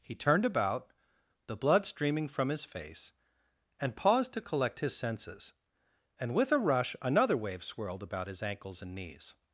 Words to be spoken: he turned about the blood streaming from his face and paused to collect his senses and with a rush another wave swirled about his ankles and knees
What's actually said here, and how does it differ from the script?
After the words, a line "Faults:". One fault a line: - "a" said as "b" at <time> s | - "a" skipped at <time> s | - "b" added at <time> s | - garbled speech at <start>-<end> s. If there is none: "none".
he turned about the blood streaming from his face and paused to collect his senses and with a rush another wave swirled about his ankles and knees
Faults:
none